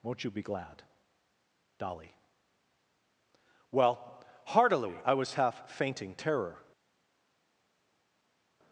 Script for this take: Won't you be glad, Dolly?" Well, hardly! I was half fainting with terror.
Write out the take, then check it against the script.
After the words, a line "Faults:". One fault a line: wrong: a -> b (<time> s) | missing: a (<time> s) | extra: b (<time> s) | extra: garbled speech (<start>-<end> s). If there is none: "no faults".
Won't you be glad, Dolly?" Well, heartily! I was half fainting terror.
Faults:
wrong: hardly -> heartily (4.5 s)
missing: with (6.2 s)